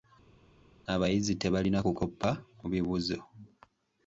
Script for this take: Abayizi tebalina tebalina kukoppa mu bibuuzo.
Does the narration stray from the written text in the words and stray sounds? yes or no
yes